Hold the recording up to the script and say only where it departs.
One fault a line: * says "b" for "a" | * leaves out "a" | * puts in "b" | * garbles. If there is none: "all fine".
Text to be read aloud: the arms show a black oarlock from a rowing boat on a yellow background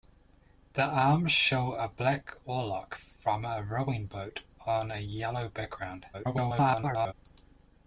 * garbles